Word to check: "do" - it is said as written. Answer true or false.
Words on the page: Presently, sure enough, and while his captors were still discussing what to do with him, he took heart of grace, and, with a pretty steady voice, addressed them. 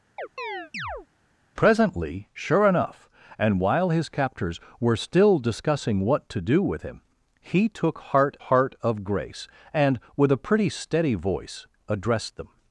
true